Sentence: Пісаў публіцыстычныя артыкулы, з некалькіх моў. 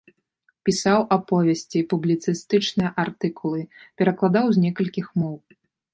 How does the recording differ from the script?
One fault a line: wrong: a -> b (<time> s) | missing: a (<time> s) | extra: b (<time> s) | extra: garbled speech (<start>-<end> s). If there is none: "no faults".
extra: аповесці (1.2 s)
extra: перакладаў (4.0 s)